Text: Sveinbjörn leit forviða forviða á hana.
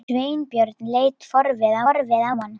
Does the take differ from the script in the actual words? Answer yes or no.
no